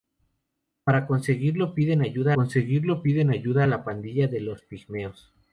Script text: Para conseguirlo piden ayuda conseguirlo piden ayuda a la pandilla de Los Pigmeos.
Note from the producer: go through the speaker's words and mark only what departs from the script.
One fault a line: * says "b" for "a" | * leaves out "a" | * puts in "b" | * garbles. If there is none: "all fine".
all fine